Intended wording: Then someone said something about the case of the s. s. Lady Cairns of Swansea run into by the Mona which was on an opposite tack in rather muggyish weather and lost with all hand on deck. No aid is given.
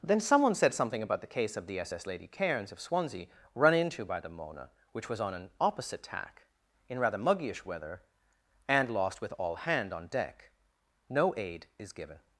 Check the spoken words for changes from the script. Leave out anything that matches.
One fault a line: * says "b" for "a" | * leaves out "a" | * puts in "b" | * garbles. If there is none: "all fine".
all fine